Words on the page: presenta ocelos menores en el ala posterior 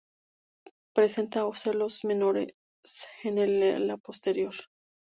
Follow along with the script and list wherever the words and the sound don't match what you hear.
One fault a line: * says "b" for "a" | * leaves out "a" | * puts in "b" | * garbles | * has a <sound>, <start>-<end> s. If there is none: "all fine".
all fine